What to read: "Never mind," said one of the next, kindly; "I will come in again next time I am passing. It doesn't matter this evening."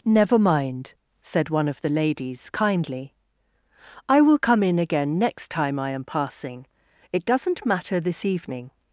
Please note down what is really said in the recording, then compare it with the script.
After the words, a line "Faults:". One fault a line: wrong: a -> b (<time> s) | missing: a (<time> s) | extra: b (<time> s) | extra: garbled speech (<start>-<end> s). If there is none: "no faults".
"Never mind," said one of the ladies, kindly; "I will come in again next time I am passing. It doesn't matter this evening."
Faults:
wrong: next -> ladies (1.9 s)